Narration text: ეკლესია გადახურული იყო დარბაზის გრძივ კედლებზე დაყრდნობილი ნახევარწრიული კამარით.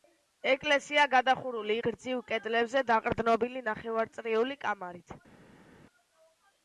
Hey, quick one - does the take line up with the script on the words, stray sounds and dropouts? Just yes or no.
no